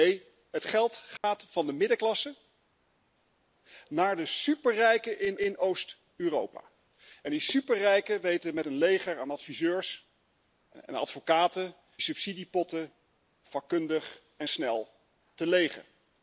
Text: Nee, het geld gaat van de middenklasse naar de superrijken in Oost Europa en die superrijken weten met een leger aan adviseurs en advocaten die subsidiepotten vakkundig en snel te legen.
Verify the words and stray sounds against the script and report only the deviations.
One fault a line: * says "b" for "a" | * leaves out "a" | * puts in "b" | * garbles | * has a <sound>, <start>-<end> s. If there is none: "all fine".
* has a dropout, 1.2-1.2 s
* puts in "in"
* leaves out "die"